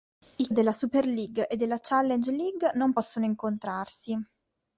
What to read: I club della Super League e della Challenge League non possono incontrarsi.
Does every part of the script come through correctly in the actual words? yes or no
no